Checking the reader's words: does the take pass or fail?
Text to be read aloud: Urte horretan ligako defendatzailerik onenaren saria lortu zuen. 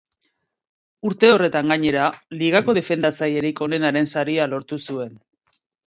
fail